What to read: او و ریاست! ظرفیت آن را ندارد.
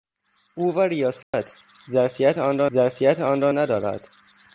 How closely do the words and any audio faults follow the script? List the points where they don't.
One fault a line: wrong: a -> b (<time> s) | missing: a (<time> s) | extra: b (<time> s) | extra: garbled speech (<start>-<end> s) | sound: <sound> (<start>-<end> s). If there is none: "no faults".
sound: dropout (1.2-1.3 s)
extra: ظرفیت آن را (2.7 s)